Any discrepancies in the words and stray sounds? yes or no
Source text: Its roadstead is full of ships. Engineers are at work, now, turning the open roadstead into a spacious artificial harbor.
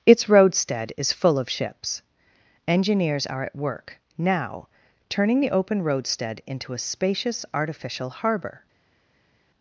no